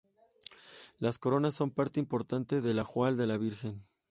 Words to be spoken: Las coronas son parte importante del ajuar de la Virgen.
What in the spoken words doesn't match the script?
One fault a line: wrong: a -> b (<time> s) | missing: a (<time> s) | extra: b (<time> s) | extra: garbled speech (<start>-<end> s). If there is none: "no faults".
no faults